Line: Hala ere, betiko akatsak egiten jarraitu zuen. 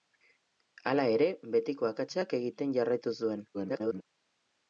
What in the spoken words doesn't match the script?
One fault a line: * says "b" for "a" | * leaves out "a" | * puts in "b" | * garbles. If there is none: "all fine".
* garbles